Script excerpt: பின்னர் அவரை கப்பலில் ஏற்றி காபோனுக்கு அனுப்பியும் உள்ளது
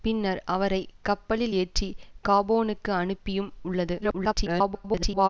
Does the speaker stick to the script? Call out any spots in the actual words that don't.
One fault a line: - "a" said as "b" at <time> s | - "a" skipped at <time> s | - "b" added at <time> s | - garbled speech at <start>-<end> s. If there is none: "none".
- garbled speech at 4.0-5.3 s